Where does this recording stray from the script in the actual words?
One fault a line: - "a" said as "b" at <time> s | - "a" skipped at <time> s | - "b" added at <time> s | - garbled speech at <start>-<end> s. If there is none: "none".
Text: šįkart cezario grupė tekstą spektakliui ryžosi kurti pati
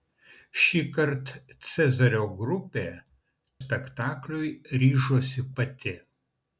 - "tekstą" skipped at 2.9 s
- "kurti" skipped at 5.5 s